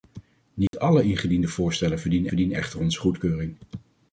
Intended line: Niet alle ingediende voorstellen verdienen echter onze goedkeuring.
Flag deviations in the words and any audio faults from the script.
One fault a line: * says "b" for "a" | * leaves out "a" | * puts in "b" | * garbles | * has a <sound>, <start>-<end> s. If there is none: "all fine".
* has a dropout, 0.7-0.7 s
* puts in "verdienen"